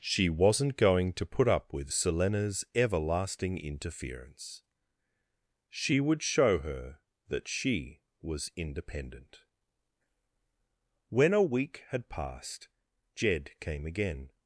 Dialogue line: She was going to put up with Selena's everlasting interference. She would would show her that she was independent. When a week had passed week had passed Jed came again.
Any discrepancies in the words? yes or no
yes